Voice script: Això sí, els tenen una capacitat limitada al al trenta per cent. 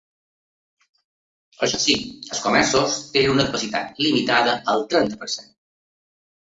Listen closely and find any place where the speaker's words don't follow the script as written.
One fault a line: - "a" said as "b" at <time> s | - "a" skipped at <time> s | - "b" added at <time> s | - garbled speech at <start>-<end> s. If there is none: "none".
- "comerços" added at 2.5 s
- "al" skipped at 4.9 s